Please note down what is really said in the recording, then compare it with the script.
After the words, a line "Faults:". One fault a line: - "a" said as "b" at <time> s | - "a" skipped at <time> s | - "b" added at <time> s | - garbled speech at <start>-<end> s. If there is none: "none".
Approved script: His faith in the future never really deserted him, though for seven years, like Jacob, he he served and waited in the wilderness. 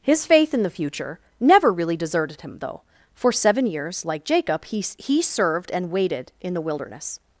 His faith in the future never really deserted him, though for seven years, like Jacob, he he served and waited in the wilderness.
Faults:
none